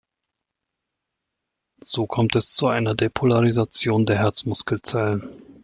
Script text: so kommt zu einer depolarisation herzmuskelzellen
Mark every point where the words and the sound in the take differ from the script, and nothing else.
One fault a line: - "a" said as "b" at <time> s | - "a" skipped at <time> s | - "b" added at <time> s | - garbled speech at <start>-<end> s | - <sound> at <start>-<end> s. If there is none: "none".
- "es" added at 2.3 s
- "der" added at 4.0 s